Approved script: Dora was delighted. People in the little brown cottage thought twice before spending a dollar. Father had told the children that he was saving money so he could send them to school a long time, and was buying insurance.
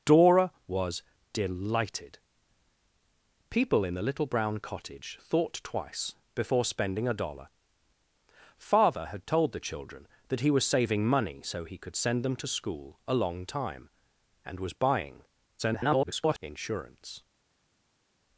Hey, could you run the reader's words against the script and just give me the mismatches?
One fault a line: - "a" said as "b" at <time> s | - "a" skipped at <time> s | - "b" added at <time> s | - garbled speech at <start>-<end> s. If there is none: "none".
- garbled speech at 15.6-16.4 s